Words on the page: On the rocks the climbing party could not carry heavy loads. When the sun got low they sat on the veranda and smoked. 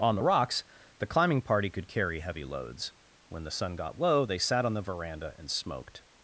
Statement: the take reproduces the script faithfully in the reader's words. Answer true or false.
false